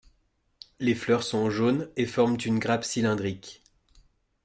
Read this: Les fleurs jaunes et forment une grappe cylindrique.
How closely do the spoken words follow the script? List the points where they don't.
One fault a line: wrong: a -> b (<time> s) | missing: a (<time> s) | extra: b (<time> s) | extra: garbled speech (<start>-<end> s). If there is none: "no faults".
extra: sont (1.2 s)